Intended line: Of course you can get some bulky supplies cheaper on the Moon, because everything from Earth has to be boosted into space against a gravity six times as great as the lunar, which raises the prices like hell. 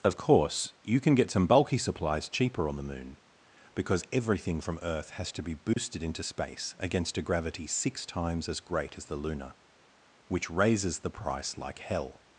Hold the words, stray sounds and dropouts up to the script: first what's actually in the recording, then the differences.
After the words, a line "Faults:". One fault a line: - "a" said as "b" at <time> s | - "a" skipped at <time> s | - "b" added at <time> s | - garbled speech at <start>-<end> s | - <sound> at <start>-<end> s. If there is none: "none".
Of course you can get some bulky supplies cheaper on the Moon, because everything from Earth has to be boosted into space against a gravity six times as great as the lunar, which raises the price like hell.
Faults:
- dropout at 5.7-5.8 s
- "prices" said as "price" at 11.1 s